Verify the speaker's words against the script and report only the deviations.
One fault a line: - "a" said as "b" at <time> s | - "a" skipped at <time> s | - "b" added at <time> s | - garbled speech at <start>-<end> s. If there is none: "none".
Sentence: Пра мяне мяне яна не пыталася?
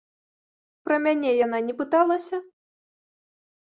- "мяне" skipped at 1.3 s